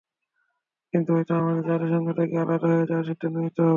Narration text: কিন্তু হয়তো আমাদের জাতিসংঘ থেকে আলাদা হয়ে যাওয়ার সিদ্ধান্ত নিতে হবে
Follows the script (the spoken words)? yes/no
yes